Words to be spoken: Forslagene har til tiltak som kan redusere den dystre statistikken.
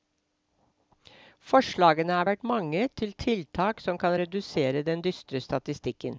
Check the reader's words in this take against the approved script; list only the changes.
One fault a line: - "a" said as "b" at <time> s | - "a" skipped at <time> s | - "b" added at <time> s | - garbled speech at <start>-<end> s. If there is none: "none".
- "vært mange" added at 2.3 s